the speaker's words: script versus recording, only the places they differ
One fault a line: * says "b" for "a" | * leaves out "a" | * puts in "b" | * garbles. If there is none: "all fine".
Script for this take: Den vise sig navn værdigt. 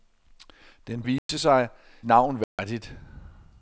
all fine